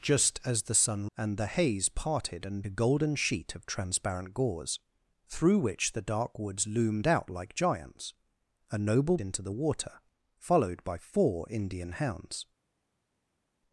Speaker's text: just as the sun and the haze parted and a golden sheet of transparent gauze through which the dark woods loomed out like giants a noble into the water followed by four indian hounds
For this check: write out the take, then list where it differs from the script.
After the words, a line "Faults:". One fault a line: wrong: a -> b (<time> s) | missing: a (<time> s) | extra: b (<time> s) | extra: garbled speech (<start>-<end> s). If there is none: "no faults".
just as the sun and the haze parted and a golden sheet of transparent gauze through which the dark woods loomed out like giants a noble into the water followed by four indian hounds
Faults:
no faults